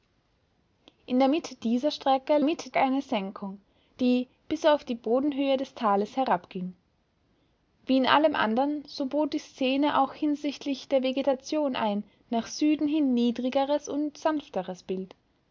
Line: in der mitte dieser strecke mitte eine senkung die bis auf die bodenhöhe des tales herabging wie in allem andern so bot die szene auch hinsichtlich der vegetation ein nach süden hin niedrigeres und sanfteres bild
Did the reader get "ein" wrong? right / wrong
right